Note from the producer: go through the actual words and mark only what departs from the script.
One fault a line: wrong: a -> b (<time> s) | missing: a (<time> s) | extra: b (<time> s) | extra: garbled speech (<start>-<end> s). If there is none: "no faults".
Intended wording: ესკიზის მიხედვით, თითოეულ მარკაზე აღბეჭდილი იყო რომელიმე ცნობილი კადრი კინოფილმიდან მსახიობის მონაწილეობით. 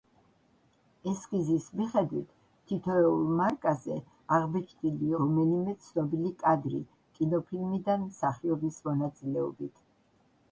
missing: იყო (5.1 s)